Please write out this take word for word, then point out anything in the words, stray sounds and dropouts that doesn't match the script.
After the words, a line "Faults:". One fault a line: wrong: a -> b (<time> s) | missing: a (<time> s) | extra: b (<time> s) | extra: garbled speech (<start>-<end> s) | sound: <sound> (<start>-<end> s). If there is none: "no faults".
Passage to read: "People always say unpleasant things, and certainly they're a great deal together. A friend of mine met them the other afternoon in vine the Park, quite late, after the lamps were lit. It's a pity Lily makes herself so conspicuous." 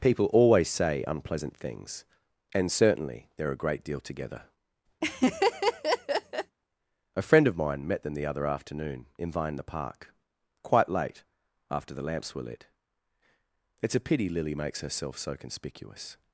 "People always say unpleasant things, and certainly they're a great deal together. A friend of mine met them the other afternoon in vine the Park, quite late, after the lamps were lit. It's a pity Lily makes herself so conspicuous."
Faults:
sound: laugh (5.0-6.6 s)